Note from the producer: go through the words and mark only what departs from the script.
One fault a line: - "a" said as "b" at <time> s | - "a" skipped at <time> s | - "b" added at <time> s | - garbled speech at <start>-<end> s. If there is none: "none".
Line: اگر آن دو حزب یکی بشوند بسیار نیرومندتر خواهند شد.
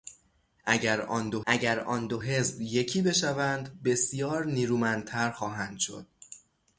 - "اگر آن دو" added at 1.5 s